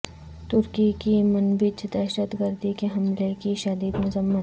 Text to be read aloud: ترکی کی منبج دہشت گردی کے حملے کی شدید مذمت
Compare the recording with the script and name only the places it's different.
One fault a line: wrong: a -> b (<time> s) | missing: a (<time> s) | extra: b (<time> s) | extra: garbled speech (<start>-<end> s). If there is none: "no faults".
no faults